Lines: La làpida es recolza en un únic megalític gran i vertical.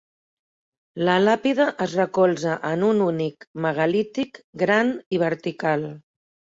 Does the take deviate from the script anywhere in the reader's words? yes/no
no